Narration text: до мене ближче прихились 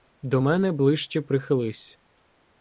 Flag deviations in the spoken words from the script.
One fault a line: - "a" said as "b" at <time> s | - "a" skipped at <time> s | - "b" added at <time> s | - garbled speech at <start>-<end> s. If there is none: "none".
none